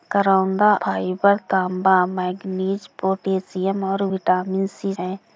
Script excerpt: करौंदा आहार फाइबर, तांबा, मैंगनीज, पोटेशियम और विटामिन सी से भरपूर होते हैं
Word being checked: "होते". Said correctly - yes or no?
no